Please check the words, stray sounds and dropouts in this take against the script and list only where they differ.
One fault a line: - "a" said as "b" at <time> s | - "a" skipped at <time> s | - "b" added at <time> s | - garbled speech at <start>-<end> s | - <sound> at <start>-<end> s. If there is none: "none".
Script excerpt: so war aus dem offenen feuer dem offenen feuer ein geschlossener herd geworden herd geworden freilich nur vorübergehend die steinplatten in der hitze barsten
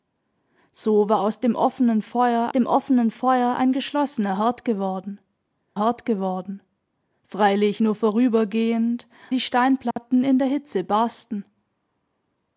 - dropout at 9.9-10.0 s